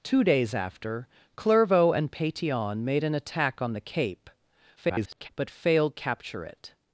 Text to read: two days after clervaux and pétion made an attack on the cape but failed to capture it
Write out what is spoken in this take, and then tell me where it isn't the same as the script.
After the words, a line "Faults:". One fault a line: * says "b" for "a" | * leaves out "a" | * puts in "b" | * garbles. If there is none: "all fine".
two days after clervaux and pétion made an attack on the cape [garbled] but failed capture it
Faults:
* garbles
* leaves out "to"